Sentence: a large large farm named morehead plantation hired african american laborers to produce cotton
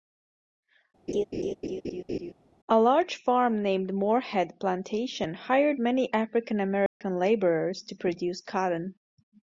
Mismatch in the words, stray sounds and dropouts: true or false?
true